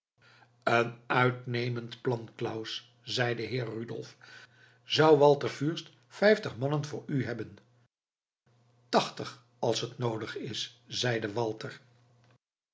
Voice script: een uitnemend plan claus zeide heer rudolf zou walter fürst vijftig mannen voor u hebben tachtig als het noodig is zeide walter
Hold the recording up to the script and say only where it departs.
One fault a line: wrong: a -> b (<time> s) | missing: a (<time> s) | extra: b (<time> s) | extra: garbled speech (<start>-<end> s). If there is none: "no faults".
no faults